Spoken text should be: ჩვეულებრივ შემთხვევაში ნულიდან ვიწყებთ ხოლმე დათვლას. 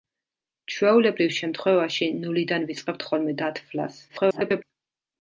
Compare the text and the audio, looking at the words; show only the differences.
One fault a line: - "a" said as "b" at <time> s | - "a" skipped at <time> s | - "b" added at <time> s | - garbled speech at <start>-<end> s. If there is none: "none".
- garbled speech at 4.1-4.6 s